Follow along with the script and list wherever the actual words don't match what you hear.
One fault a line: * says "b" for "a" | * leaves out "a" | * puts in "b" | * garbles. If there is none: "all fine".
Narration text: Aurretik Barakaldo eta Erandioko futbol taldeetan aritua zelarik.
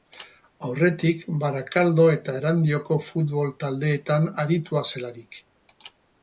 all fine